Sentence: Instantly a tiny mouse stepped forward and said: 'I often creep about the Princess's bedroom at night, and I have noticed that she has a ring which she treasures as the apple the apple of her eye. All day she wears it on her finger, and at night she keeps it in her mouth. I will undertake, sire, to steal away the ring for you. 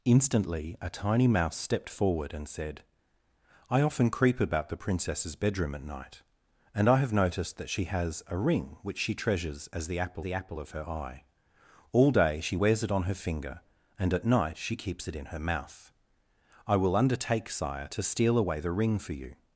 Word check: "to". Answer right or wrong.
right